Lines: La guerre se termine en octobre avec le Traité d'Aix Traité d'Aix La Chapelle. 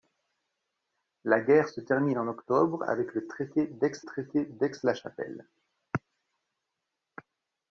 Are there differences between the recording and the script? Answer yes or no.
no